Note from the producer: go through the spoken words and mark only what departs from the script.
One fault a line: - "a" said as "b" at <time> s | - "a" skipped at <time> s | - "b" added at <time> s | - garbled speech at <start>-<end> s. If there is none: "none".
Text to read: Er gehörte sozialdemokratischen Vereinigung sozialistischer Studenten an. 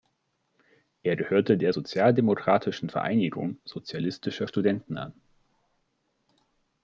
- "der" added at 1.6 s